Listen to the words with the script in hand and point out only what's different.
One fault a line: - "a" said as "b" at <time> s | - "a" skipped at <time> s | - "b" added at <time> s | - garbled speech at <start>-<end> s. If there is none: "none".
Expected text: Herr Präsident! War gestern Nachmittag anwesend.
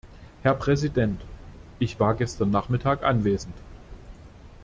- "Ich" added at 1.8 s